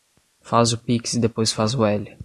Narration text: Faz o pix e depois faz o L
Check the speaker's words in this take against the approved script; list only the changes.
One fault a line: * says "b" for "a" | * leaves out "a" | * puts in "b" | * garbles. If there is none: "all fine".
all fine